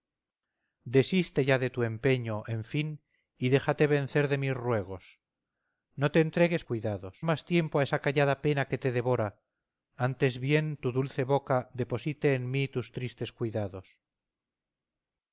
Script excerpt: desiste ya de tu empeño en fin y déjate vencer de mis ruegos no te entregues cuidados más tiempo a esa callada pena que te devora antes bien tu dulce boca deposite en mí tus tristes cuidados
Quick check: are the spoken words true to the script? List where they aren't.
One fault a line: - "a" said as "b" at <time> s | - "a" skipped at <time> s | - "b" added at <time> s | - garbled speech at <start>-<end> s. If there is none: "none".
none